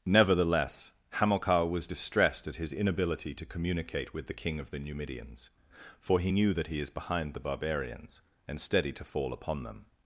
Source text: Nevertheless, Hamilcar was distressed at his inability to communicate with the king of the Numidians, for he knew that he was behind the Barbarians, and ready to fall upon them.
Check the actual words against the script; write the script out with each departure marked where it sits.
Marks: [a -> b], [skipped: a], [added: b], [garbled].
Nevertheless, Hamilcar was distressed at his inability to communicate with the king of the Numidians, for he knew that he [was -> is] behind the Barbarians, and [ready -> steady] to fall upon them.